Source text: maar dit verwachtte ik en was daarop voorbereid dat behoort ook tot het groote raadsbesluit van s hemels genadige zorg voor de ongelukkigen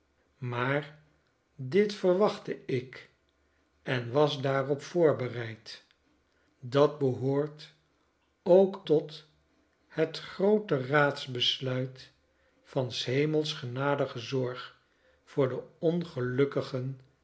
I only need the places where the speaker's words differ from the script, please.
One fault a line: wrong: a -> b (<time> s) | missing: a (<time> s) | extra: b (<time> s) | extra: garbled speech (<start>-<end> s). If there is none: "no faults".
no faults